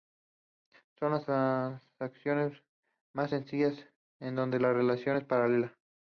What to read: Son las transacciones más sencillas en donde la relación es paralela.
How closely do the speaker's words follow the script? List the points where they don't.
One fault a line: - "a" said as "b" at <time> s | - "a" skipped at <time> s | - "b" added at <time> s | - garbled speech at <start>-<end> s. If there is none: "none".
none